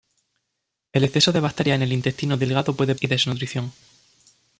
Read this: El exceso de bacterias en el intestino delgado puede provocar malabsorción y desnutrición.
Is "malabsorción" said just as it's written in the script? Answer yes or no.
no